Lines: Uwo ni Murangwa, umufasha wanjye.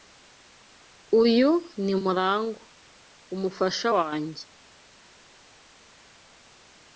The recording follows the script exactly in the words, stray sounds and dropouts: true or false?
false